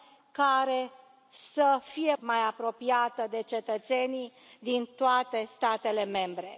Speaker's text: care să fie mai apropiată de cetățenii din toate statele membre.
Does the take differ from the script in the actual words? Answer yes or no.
no